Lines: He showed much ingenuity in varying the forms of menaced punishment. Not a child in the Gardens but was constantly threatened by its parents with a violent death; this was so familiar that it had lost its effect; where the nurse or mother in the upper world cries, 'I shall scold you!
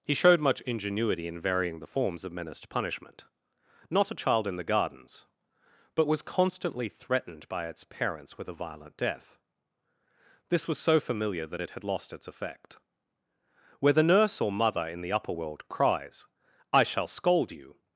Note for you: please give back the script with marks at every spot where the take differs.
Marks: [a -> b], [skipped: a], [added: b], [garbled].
He showed much ingenuity in varying the forms of menaced punishment. Not a child in the Gardens but was constantly threatened by its parents with a violent death; this was so familiar that it had lost its effect; where the nurse or mother in the upper world cries, 'I shall scold you!